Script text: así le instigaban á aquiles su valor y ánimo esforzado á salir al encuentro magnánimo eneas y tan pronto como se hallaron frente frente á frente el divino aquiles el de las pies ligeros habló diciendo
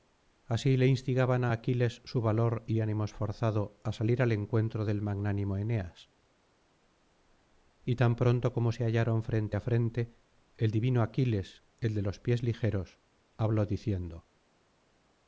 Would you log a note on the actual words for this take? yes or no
yes